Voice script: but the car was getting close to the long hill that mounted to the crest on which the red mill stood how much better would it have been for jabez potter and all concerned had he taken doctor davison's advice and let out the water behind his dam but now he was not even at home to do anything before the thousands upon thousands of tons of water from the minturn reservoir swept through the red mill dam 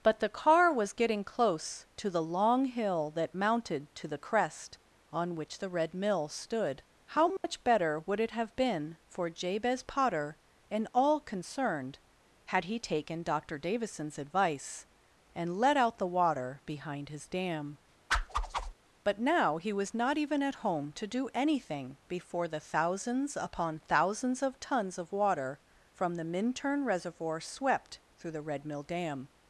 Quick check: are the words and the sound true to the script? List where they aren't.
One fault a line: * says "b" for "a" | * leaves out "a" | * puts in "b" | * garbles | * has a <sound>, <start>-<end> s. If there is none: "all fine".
* has a dropout, 7.4-7.4 s
* has a whoosh, 18.1-18.7 s